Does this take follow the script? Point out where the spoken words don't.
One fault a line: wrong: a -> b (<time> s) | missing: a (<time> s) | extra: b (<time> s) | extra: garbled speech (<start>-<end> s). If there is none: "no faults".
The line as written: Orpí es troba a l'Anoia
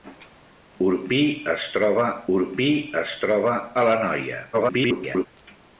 extra: orpí es troba (2.3 s)
extra: garbled speech (4.5-5.3 s)